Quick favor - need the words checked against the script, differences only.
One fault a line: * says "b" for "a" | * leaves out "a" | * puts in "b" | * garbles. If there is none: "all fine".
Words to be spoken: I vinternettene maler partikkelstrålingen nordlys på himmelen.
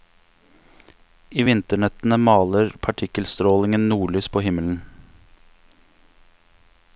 all fine